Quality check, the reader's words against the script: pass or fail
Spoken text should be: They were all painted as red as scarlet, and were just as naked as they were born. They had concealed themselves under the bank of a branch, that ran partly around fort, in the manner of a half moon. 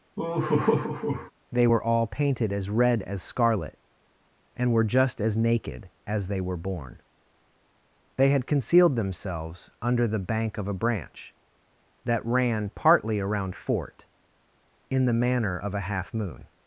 pass